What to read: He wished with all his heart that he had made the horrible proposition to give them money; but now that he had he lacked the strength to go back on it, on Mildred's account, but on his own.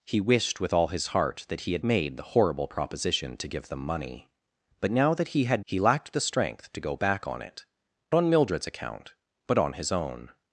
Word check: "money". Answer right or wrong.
right